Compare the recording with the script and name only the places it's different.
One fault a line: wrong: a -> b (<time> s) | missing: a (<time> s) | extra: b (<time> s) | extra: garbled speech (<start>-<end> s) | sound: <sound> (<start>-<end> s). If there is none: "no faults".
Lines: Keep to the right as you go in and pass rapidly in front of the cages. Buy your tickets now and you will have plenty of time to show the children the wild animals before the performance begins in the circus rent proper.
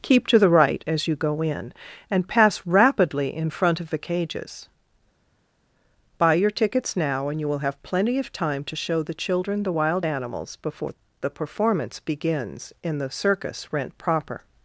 no faults